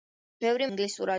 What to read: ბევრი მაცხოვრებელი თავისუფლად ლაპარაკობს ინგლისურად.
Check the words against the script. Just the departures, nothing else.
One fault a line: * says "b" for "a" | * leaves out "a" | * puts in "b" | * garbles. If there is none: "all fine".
* leaves out "მაცხოვრებელი თავისუფლად ლაპარაკობს"